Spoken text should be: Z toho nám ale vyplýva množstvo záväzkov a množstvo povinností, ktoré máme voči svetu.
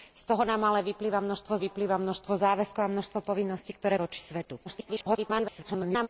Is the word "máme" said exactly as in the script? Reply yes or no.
no